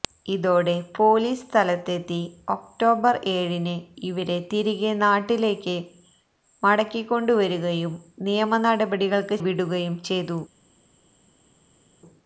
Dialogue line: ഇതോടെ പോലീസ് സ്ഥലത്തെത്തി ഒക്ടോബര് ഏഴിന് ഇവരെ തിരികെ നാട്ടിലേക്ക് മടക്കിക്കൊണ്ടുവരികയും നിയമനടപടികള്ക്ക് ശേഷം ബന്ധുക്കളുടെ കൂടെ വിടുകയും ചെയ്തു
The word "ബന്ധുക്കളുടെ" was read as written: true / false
false